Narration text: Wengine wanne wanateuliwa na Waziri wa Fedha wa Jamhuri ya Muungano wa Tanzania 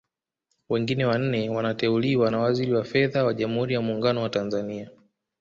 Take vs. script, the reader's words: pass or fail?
pass